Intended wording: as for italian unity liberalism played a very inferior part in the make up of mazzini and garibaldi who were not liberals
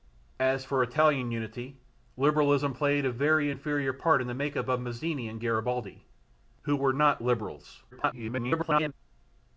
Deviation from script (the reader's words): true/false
true